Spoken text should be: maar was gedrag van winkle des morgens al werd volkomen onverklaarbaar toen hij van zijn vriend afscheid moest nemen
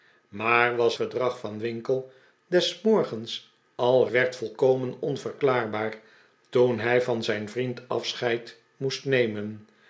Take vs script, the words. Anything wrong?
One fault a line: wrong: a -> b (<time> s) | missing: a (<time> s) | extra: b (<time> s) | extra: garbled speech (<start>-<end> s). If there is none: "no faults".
no faults